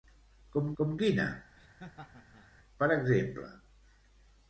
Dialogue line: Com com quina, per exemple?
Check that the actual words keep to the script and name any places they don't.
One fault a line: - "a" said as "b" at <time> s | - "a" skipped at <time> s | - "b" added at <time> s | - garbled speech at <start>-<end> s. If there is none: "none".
none